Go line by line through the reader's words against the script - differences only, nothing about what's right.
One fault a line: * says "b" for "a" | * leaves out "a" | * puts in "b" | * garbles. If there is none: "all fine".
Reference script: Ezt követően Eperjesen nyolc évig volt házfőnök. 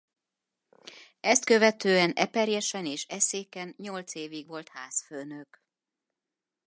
* puts in "és Eszéken"